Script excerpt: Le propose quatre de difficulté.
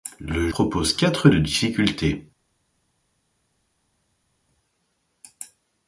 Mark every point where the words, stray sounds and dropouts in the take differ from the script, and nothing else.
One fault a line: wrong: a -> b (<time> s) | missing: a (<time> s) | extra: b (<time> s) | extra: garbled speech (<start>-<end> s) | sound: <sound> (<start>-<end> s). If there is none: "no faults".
no faults